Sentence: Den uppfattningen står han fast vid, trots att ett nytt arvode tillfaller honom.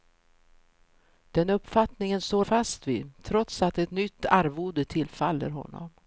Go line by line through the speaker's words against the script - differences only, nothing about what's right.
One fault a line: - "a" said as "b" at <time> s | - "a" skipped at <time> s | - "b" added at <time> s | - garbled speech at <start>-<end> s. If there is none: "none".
- "han" skipped at 2.5 s